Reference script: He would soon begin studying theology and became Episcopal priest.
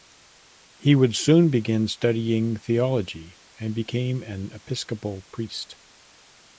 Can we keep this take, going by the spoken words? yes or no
no